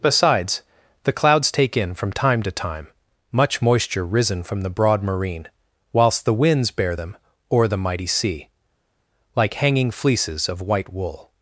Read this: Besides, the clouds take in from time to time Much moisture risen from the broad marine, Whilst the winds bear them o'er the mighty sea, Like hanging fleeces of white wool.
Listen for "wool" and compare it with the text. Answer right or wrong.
right